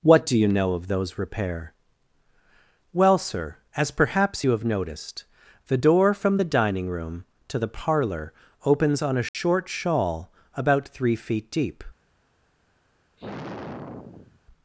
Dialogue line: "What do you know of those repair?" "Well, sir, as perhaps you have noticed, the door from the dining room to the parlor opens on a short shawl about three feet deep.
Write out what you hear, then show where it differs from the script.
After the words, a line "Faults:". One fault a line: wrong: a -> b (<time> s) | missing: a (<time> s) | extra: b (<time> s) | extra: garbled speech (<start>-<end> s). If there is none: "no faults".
"What do you know of those repair?" "Well, sir, as perhaps you have noticed, the door from the dining room to the parlor opens on a short shawl about three feet deep.
Faults:
no faults